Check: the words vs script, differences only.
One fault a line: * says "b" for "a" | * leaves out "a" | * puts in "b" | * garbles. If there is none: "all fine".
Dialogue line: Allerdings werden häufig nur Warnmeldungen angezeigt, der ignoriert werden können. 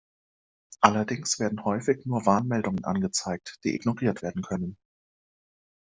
* says "die" for "der"